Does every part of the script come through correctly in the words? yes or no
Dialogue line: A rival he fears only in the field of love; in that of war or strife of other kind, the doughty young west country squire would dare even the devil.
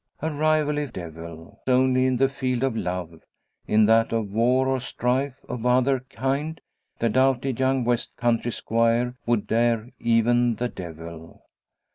no